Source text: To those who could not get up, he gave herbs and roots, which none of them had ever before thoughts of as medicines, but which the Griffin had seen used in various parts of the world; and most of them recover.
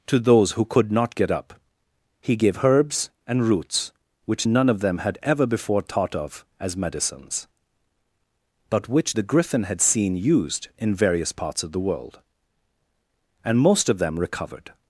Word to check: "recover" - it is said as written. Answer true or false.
false